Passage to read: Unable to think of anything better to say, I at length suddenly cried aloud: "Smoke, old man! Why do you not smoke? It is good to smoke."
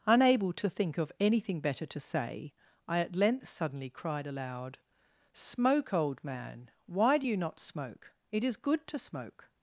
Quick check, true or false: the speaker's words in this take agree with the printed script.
true